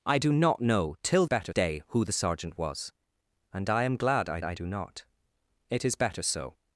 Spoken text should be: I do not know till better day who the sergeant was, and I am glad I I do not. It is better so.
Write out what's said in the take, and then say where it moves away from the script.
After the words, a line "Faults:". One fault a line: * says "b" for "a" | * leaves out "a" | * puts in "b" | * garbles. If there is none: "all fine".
I do not know till better day who the sergeant was, and I am glad I I do not. It is better so.
Faults:
all fine